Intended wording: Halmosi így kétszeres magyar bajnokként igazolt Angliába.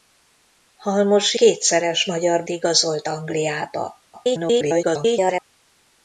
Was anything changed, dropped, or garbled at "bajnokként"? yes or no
yes